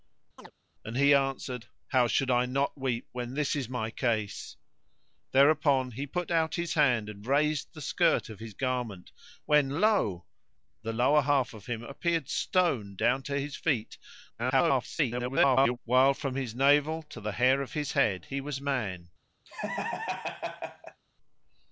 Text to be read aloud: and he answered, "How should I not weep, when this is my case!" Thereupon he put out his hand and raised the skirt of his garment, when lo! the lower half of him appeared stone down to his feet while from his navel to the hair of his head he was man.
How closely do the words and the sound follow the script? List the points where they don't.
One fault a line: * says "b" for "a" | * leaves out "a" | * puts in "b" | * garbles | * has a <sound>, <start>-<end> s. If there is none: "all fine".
* has a chirp, 0.4-0.5 s
* garbles
* has a laugh, 19.5-21.0 s